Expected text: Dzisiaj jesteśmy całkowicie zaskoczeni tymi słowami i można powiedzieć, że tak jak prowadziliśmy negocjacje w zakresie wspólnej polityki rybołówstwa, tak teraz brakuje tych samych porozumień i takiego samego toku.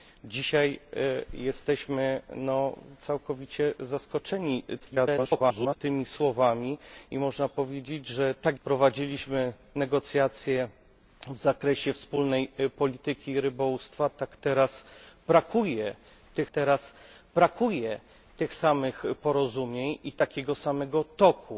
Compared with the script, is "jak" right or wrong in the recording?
wrong